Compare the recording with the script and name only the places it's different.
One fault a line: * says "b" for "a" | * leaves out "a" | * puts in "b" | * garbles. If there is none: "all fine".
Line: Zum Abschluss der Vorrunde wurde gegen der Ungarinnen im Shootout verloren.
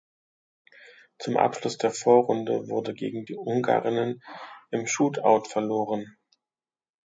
* says "die" for "der"